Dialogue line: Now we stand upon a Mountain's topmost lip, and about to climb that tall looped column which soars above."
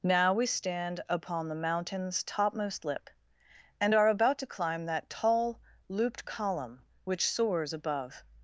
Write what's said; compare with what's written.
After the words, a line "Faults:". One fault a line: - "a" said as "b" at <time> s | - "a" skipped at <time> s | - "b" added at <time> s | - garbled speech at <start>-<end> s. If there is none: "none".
Now we stand upon the Mountain's topmost lip, and are about to climb that tall looped column which soars above."
Faults:
- "a" said as "the" at 1.5 s
- "are" added at 3.9 s